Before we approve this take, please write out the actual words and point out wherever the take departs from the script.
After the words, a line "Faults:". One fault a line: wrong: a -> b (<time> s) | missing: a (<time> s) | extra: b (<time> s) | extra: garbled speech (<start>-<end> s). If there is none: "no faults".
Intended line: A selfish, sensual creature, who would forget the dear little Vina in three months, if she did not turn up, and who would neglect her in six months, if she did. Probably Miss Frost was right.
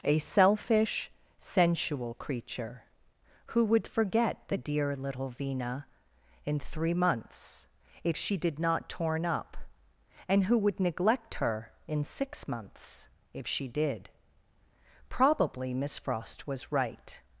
A selfish, sensual creature, who would forget the dear little Vina in three months, if she did not torn up, and who would neglect her in six months, if she did. Probably Miss Frost was right.
Faults:
wrong: turn -> torn (8.9 s)